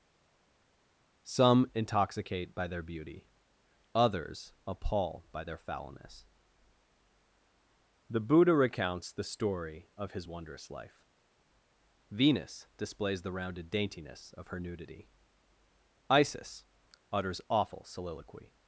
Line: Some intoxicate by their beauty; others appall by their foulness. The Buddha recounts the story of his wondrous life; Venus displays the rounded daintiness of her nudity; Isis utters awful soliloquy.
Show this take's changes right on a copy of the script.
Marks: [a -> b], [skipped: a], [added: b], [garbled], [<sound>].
Some intoxicate by their beauty; others appall by their foulness. The Buddha recounts the story of his wondrous life; Venus displays the rounded daintiness of her nudity; Isis utters awful soliloquy.